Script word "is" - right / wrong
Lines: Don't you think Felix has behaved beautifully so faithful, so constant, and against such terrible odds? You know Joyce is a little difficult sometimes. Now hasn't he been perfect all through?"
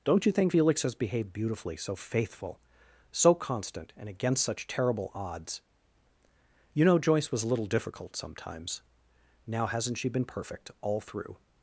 wrong